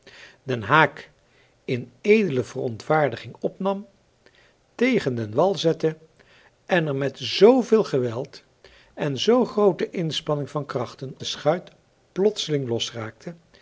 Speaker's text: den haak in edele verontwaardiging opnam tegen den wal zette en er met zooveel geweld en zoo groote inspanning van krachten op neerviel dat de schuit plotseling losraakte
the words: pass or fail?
fail